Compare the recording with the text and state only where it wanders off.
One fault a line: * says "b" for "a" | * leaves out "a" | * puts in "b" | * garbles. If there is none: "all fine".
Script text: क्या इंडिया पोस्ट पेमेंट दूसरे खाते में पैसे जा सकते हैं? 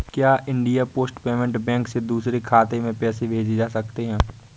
* puts in "बैंक से"
* puts in "भेजे"